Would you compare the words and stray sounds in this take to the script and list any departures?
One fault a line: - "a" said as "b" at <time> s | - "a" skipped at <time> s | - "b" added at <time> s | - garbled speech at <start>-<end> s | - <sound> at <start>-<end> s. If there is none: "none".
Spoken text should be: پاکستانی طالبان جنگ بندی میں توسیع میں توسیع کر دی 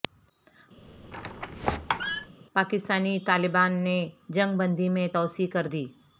- squeak at 0.8-2.3 s
- "نے" added at 3.8 s
- "میں توسیع" skipped at 5.5 s